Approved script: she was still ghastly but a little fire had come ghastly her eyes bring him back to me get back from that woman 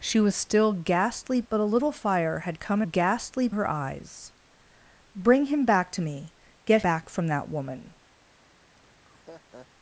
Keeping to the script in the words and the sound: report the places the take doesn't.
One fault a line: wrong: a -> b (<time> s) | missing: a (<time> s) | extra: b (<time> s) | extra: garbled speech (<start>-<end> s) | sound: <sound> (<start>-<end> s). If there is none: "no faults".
sound: laugh (8.8-9.7 s)